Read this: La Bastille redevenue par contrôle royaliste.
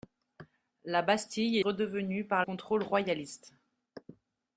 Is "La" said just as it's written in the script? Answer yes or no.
yes